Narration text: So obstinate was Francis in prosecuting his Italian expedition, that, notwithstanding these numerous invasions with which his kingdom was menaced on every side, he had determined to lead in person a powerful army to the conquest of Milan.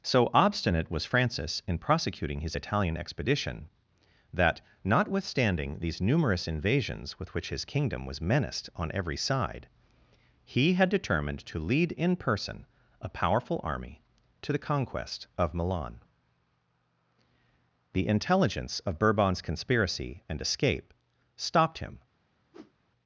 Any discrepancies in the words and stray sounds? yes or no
yes